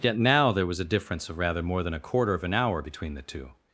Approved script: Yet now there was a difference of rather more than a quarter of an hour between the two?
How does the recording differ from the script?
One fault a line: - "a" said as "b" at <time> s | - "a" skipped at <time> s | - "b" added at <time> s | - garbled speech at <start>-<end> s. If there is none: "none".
none